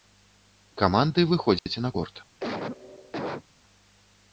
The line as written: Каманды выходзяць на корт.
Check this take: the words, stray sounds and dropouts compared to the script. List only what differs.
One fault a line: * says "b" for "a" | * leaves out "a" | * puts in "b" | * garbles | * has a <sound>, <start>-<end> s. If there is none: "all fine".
* has a dropout, 1.6-1.7 s
* has a cough, 2.4-3.4 s